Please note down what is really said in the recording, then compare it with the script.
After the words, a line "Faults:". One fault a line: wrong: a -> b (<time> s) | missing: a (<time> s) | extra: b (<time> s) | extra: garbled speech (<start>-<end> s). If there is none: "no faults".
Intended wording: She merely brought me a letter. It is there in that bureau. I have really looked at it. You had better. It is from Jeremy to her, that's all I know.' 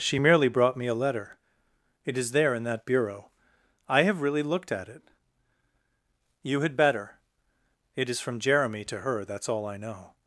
She merely brought me a letter. It is there in that bureau. I have really looked at it. You had better. It is from Jeremy to her, that's all I know.'
Faults:
no faults